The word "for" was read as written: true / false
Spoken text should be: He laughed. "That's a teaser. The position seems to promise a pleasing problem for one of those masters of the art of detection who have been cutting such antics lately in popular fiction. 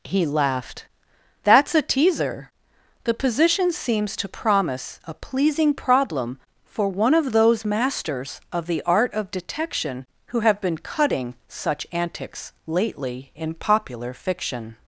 true